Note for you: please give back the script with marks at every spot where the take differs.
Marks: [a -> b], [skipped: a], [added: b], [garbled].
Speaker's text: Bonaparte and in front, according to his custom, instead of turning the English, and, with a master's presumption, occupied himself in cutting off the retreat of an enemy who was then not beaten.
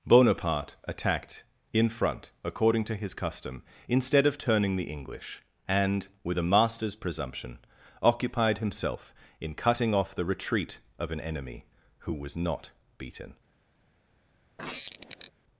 Bonaparte [and -> attacked] in front, according to his custom, instead of turning the English, and, with a master's presumption, occupied himself in cutting off the retreat of an enemy who was [skipped: then] not beaten.